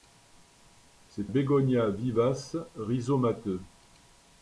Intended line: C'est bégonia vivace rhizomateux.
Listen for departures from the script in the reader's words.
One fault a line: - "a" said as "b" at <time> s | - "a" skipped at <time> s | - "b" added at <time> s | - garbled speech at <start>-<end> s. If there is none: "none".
none